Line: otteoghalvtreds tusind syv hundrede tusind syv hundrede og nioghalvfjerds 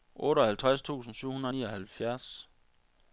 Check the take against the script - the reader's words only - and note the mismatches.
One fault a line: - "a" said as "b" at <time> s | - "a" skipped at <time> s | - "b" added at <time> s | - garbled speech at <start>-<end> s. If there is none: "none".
- "tusind syv hundrede" skipped at 1.5 s